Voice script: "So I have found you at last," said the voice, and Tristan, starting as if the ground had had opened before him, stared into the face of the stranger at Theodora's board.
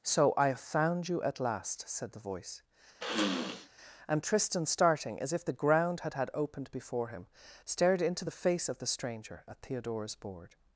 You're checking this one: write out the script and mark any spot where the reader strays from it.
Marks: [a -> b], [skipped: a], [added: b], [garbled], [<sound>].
"So I have found you at last," said the voice, [sniff] and Tristan, starting as if the ground had had opened before him, stared into the face of the stranger at Theodora's board.